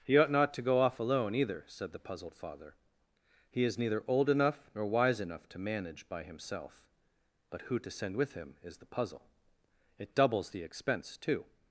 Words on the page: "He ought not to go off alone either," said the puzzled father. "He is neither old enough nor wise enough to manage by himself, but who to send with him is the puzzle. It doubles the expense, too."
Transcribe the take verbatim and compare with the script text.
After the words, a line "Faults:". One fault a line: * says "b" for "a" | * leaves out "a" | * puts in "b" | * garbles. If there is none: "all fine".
"He ought not to go off alone either," said the puzzled father. "He is neither old enough nor wise enough to manage by himself, but who to send with him is the puzzle. It doubles the expense, too."
Faults:
all fine